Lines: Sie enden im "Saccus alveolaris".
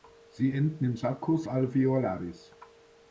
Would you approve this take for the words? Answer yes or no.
yes